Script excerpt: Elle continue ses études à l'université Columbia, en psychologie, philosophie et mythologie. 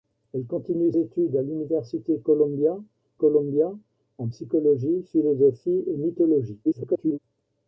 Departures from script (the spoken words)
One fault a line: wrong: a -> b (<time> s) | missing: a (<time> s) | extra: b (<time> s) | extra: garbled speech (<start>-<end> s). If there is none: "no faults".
missing: ses (0.9 s)
extra: Columbia (3.1 s)
extra: garbled speech (6.6-7.2 s)